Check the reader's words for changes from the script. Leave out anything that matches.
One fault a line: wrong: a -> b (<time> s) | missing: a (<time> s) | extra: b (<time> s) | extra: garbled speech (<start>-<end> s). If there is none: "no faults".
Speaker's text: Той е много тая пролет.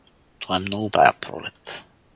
no faults